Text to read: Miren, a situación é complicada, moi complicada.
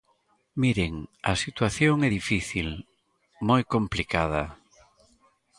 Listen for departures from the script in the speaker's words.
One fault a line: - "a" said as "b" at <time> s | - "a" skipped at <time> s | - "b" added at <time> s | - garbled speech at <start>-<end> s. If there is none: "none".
- "complicada" said as "difícil" at 2.2 s